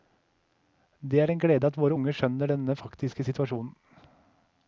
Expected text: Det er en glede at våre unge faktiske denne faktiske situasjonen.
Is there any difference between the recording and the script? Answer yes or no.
yes